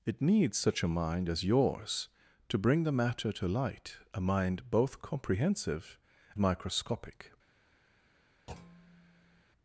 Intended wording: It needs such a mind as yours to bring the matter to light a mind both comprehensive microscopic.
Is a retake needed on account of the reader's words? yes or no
no